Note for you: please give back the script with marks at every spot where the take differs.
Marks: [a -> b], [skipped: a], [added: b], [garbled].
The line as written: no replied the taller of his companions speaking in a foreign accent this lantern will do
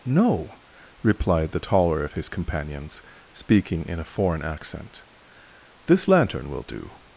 no replied the taller of his companions speaking in a foreign accent this lantern will do